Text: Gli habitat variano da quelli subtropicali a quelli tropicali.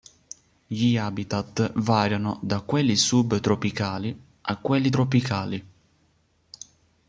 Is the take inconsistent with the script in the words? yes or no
no